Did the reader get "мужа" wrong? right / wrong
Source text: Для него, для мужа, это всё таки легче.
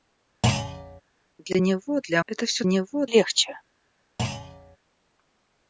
wrong